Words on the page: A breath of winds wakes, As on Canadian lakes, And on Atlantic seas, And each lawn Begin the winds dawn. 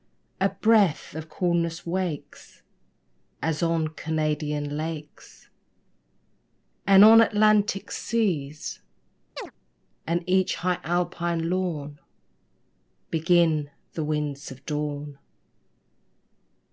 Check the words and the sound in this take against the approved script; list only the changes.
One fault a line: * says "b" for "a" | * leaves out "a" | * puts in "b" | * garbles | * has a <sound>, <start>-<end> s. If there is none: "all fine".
* says "coolness" for "winds"
* has a chirp, 9.4-9.5 s
* puts in "high Alpine"
* puts in "of"